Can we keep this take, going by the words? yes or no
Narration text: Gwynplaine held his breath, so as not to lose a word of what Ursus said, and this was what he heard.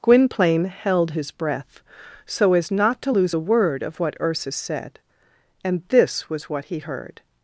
yes